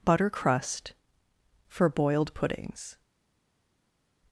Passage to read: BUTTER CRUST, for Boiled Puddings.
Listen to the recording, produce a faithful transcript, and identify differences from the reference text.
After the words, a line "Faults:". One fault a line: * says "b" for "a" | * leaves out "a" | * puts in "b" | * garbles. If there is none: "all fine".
BUTTER CRUST, for Boiled Puddings.
Faults:
all fine